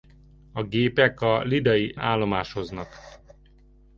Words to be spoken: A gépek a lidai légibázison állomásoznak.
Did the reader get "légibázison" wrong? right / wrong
wrong